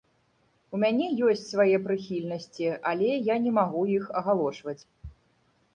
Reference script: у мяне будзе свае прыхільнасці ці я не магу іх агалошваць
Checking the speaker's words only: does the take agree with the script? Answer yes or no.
no